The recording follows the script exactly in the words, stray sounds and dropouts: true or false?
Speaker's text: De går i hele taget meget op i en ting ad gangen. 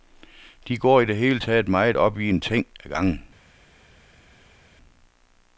false